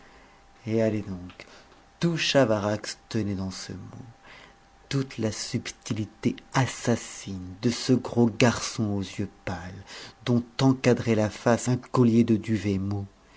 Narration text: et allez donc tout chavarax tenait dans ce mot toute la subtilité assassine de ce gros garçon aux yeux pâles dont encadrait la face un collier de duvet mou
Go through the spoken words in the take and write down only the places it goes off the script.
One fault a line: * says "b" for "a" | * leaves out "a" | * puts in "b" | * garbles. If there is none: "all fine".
all fine